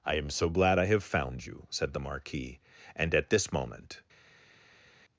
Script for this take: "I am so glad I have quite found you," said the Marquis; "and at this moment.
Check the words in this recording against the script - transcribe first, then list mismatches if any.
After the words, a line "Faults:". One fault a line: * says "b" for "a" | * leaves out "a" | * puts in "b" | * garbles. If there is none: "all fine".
"I am so glad I have found you," said the Marquis; "and at this moment.
Faults:
* leaves out "quite"